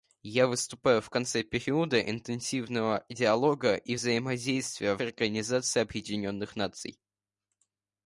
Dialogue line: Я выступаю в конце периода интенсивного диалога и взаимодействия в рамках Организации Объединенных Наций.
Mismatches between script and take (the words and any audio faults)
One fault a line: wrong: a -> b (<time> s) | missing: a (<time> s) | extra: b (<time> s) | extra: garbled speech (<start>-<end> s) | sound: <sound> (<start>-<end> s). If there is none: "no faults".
missing: рамках (5.0 s)